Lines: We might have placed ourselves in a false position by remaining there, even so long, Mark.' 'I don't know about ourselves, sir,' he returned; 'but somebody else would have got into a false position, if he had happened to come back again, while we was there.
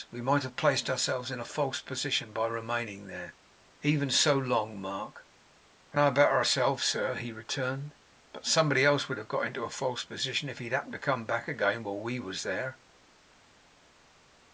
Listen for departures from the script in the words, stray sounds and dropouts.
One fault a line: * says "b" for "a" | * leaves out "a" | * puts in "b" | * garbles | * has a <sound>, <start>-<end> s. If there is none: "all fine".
* leaves out "don't"